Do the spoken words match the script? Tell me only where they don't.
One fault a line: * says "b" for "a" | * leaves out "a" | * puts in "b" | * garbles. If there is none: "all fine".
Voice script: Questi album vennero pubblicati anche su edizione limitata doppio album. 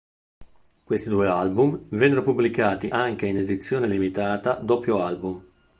* puts in "due"
* says "in" for "su"